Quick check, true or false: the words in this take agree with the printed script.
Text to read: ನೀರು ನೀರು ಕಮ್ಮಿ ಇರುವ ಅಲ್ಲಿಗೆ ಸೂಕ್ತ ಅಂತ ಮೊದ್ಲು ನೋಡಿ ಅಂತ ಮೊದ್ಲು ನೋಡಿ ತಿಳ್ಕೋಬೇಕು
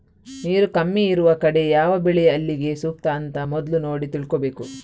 false